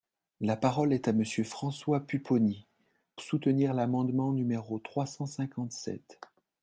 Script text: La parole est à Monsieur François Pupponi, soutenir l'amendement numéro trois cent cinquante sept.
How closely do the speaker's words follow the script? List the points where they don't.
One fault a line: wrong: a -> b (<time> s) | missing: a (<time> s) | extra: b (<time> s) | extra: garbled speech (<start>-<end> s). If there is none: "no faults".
no faults